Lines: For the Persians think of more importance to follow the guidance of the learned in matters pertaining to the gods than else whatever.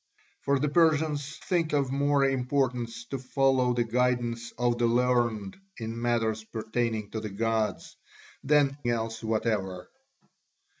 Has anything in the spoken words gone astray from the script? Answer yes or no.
no